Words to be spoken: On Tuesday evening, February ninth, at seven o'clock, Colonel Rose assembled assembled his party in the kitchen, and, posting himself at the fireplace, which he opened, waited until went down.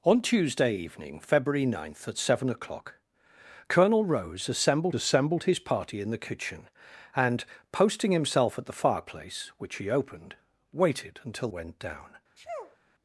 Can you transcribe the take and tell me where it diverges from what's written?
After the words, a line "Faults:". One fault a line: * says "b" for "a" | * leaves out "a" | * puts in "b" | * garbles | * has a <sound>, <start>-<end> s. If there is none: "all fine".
On Tuesday evening, February ninth, at seven o'clock, Colonel Rose assembled assembled his party in the kitchen, and, posting himself at the fireplace, which he opened, waited until went down.
Faults:
* has a sneeze, 12.4-12.8 s